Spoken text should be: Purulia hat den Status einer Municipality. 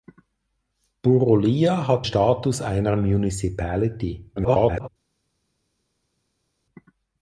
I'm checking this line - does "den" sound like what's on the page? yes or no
no